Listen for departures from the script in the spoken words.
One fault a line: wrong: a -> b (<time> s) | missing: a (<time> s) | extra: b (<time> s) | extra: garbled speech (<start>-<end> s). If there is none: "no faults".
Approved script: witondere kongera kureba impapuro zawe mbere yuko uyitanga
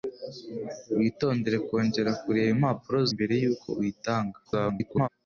missing: zawe (3.0 s)
extra: garbled speech (4.4-5.1 s)